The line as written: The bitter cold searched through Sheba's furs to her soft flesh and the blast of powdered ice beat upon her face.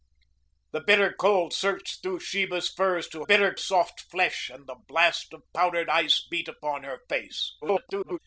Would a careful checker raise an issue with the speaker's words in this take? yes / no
yes